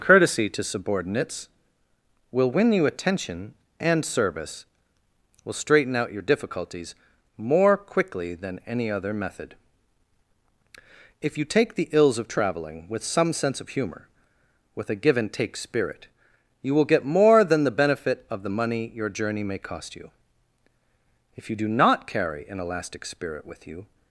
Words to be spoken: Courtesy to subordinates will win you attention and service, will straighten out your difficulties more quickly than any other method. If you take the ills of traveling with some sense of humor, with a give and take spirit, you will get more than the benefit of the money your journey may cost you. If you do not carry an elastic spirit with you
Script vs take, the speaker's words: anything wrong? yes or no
no